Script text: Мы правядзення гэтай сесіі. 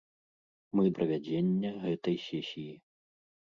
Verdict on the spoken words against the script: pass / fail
pass